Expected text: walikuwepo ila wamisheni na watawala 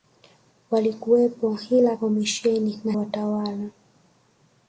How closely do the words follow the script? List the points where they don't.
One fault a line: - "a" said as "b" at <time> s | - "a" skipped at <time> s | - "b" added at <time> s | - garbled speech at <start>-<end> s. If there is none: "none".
none